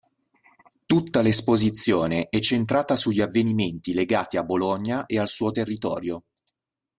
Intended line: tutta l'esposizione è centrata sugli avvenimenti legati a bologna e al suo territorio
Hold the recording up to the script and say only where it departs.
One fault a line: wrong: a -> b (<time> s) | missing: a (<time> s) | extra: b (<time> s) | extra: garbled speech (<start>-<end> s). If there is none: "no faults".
no faults